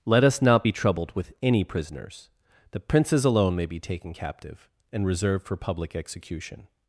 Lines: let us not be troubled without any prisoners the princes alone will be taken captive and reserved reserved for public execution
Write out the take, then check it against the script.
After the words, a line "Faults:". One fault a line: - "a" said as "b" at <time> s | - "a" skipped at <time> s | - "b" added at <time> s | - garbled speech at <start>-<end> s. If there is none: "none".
let us not be troubled with any prisoners the princes alone may be taken captive and reserved for public execution
Faults:
- "without" said as "with" at 1.1 s
- "will" said as "may" at 3.5 s
- "reserved" skipped at 5.5 s